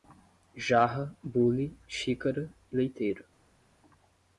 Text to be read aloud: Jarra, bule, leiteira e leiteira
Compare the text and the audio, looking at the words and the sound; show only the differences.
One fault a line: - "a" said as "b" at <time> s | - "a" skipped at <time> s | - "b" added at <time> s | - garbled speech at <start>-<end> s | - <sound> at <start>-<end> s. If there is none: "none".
- "leiteira" said as "xícara" at 1.9 s